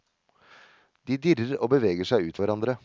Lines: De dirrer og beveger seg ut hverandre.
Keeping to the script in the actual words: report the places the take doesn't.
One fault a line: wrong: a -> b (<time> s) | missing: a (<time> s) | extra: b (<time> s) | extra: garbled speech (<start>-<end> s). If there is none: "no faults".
no faults